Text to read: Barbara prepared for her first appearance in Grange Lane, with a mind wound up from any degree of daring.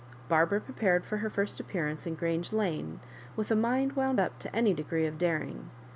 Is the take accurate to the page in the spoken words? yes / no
no